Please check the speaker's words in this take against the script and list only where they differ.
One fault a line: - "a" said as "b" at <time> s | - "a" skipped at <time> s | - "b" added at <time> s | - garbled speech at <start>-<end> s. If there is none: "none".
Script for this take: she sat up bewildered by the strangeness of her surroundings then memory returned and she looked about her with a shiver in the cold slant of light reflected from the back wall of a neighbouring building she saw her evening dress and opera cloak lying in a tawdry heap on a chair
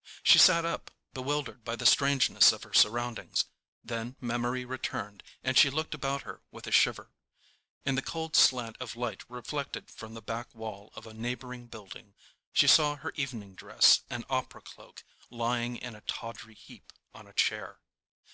none